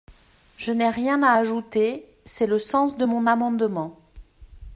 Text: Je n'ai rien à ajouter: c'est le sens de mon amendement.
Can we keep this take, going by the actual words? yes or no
yes